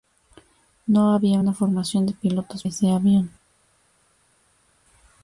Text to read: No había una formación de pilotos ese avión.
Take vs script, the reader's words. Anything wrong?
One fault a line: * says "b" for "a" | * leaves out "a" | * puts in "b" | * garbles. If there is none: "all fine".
all fine